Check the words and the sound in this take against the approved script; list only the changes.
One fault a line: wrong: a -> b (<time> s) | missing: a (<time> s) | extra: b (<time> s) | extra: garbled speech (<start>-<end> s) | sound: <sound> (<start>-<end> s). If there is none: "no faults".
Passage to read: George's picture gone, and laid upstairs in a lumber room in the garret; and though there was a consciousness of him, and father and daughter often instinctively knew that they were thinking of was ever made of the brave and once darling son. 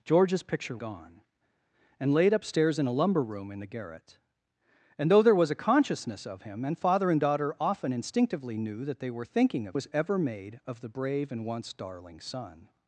no faults